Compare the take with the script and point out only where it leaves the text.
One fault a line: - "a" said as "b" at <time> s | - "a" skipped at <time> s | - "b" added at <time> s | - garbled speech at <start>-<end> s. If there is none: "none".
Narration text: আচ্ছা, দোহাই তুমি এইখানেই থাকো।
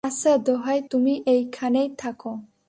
none